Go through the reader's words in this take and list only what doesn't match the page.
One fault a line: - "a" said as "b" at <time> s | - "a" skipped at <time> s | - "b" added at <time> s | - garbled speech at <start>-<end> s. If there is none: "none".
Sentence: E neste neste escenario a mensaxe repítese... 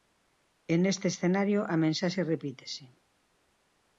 - "neste" skipped at 1.1 s